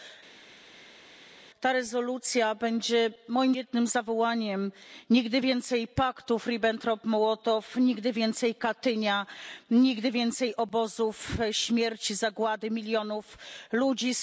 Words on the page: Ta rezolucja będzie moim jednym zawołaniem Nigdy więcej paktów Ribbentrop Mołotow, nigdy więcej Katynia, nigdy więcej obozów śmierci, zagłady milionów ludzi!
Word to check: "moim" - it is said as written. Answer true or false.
true